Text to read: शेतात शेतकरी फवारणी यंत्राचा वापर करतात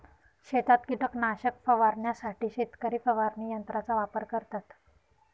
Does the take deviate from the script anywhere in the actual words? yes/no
yes